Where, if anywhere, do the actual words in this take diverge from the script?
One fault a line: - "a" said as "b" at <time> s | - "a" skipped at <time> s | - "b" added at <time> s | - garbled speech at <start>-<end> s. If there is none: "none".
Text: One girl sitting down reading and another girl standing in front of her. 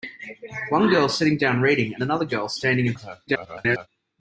- "front" skipped at 3.0 s
- garbled speech at 3.3-3.9 s